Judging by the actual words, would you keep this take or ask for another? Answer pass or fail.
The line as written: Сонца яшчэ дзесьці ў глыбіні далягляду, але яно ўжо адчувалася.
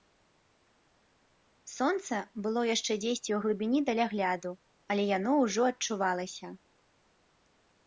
fail